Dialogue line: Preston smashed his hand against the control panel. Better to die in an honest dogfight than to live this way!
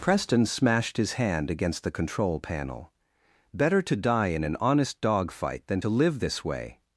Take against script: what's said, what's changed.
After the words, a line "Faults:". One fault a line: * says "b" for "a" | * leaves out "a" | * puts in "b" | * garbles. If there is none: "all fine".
Preston smashed his hand against the control panel. Better to die in an honest dogfight than to live this way!
Faults:
all fine